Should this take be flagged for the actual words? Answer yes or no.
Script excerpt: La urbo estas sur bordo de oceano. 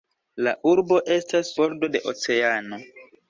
yes